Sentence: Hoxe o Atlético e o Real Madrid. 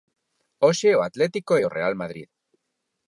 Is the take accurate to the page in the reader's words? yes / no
yes